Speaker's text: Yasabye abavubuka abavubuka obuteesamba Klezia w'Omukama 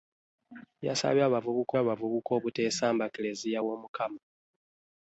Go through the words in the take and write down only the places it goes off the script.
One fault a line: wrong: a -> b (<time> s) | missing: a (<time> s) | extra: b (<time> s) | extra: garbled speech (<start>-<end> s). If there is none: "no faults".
no faults